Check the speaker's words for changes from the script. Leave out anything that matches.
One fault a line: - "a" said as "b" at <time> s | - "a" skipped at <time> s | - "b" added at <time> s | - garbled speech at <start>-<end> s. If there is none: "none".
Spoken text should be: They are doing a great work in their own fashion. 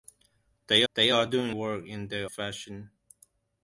- "they" added at 0.9 s
- "a great" skipped at 1.5 s
- "own" skipped at 2.3 s